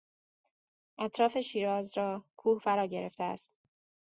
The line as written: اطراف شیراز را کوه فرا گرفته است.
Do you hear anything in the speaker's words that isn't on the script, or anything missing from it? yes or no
no